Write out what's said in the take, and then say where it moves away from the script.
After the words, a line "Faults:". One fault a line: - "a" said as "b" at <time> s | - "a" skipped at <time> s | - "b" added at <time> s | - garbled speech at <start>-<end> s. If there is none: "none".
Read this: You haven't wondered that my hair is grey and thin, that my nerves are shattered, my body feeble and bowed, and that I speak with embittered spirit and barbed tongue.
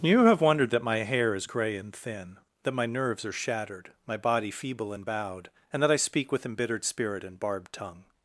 You have wondered that my hair is grey and thin, that my nerves are shattered, my body feeble and bowed, and that I speak with embittered spirit and barbed tongue.
Faults:
- "haven't" said as "have" at 0.2 s